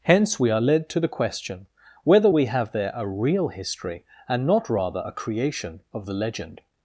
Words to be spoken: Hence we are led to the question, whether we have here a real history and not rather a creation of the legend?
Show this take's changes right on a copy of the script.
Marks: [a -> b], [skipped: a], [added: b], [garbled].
Hence we are led to the question, whether we have [here -> there] a real history and not rather a creation of the legend?